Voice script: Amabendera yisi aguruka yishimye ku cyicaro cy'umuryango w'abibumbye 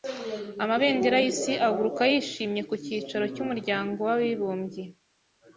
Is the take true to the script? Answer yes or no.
yes